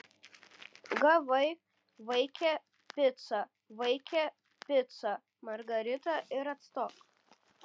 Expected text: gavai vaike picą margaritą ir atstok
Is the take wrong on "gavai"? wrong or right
right